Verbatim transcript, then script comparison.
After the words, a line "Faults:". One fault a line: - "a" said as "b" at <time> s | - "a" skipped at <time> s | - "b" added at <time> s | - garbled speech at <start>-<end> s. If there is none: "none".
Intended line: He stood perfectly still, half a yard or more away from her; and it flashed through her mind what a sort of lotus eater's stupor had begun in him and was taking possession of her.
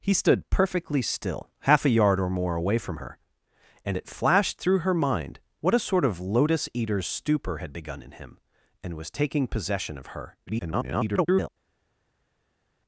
He stood perfectly still, half a yard or more away from her; and it flashed through her mind what a sort of lotus eater's stupor had begun in him and was taking possession of her. [garbled]
Faults:
- garbled speech at 10.5-11.5 s